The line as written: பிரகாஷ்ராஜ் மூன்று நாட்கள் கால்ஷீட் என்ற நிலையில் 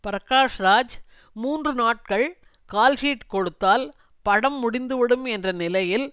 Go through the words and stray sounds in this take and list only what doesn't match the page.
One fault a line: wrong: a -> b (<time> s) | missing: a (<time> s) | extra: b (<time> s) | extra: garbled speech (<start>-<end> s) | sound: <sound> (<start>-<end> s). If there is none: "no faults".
extra: கொடுத்தால் படம் முடிந்துவிடும் (3.3 s)